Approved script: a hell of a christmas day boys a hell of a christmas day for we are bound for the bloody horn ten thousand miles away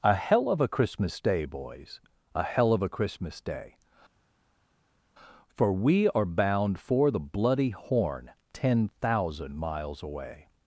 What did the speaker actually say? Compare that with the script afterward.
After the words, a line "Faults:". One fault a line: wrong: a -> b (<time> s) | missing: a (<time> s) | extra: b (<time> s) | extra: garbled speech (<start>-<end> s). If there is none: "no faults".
a hell of a christmas day boys a hell of a christmas day for we are bound for the bloody horn ten thousand miles away
Faults:
no faults